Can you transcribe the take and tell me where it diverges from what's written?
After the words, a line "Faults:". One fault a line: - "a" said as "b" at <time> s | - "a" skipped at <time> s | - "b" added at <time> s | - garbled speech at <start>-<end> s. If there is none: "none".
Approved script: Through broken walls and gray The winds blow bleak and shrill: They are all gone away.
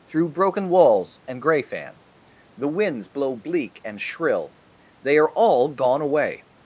Through broken walls and gray fan The winds blow bleak and shrill: They are all gone away.
Faults:
- "fan" added at 1.6 s